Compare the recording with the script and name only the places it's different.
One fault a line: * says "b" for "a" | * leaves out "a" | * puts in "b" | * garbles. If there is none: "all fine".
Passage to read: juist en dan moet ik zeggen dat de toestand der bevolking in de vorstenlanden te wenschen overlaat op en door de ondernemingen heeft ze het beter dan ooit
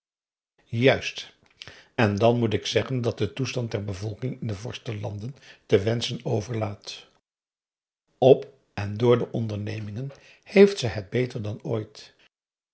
all fine